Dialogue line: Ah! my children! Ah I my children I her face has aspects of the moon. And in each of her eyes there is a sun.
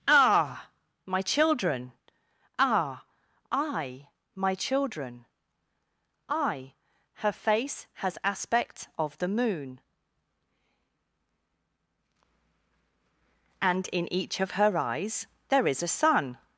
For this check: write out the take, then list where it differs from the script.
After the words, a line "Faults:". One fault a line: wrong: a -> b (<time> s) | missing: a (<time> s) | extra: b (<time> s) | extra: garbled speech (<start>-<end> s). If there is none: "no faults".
Ah! my children! Ah I my children I her face has aspect of the moon. And in each of her eyes there is a sun.
Faults:
wrong: aspects -> aspect (8.2 s)